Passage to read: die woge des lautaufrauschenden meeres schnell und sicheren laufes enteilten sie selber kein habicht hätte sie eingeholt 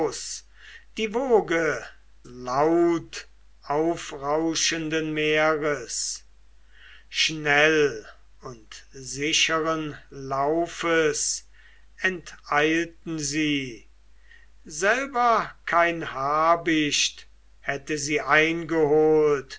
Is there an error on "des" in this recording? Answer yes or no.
yes